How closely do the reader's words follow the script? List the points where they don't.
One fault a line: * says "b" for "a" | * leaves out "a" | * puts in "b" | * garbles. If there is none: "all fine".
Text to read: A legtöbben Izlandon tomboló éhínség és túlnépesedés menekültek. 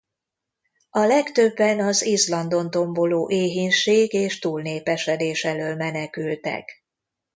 * puts in "az"
* puts in "elől"